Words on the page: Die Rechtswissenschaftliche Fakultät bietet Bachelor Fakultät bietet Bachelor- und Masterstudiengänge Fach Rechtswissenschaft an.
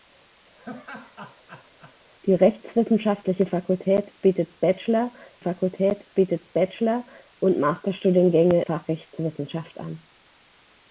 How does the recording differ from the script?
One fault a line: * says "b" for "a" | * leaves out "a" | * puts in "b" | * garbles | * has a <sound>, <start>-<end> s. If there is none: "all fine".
* has a laugh, 0.6-2.0 s